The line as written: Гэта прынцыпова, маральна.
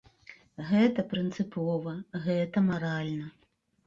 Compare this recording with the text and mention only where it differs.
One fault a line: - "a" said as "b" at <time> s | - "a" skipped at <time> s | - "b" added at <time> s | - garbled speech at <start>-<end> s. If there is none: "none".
- "гэта" added at 2.2 s